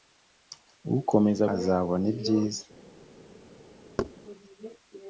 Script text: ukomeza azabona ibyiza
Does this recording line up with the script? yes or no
yes